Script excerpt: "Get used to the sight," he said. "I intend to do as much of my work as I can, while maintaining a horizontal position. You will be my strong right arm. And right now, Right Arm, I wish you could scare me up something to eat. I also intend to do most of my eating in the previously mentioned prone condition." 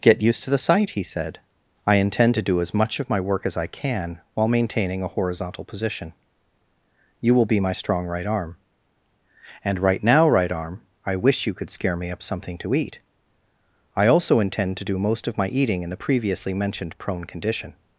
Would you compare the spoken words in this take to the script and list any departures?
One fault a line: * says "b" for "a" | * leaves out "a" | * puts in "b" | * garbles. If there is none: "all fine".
all fine